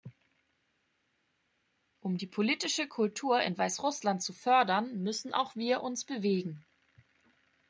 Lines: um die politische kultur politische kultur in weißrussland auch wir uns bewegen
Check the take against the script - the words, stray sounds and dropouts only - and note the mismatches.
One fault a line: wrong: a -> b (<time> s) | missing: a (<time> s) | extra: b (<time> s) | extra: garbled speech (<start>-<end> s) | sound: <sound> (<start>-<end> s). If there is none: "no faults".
wrong: politische kultur in weißrussland -> in weißrussland zu fördern müssen (3.4 s)